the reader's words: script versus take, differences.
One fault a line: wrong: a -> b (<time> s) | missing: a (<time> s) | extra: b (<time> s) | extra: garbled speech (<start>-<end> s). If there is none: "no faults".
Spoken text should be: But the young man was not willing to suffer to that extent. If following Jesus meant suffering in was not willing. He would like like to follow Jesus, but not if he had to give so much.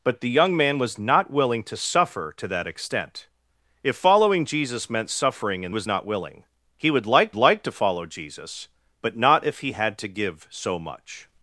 no faults